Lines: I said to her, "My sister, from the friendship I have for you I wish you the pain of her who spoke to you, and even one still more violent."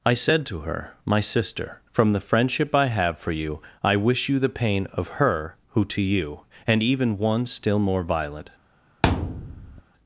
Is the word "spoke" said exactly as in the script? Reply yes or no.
no